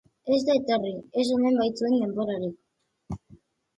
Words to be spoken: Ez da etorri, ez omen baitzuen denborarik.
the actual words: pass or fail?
pass